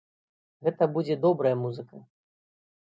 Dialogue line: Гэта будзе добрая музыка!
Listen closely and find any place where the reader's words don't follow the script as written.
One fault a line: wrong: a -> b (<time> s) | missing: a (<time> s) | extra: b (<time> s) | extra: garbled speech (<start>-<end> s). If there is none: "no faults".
no faults